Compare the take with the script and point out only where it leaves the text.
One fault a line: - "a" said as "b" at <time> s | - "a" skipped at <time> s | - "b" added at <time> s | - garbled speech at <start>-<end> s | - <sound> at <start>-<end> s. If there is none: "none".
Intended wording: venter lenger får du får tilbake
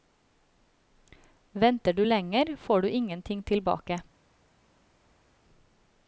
- "du" added at 1.9 s
- "får" said as "ingenting" at 2.9 s